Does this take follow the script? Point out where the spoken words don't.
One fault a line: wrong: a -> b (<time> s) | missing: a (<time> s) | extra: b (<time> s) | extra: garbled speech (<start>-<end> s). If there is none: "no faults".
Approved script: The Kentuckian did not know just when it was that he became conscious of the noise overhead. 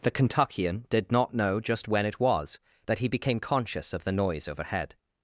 no faults